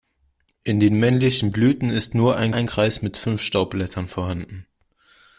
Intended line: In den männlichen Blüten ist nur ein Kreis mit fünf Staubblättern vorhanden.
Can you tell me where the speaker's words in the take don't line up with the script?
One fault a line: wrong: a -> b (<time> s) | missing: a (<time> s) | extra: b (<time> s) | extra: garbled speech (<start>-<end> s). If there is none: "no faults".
extra: ein (2.5 s)